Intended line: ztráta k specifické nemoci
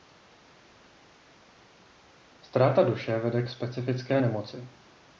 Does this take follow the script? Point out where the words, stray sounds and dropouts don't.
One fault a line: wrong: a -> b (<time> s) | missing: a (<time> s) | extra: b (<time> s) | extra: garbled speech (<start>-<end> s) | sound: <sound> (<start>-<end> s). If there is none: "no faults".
extra: duše vede (2.8 s)